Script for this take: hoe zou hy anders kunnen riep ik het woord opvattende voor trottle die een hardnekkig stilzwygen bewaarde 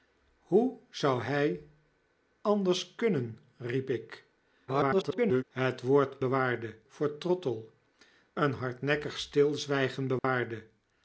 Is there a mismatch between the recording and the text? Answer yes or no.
yes